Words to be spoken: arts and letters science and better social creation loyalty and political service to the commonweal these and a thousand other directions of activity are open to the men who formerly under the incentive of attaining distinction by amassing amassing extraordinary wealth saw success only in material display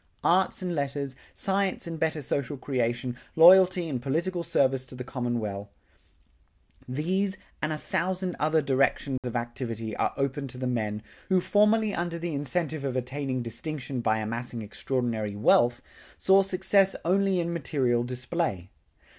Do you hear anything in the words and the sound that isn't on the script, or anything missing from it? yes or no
yes